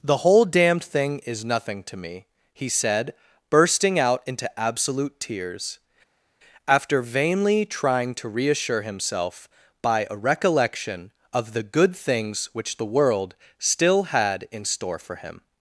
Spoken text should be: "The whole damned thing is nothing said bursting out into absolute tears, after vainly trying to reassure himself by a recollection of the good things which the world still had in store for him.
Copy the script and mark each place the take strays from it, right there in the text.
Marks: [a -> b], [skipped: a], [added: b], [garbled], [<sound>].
"The whole damned thing is nothing [added: to me he] said bursting out into absolute tears, after vainly trying to reassure himself by a recollection of the good things which the world still had in store for him.